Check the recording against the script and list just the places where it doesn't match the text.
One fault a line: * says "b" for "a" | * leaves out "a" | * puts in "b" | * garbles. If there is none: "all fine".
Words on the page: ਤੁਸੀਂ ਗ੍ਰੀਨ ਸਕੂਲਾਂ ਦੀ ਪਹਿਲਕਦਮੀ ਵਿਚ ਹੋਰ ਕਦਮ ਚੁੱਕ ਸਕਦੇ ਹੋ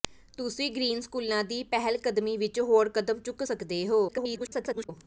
* garbles